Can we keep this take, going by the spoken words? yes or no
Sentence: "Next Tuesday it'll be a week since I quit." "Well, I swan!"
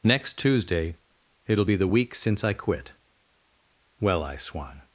no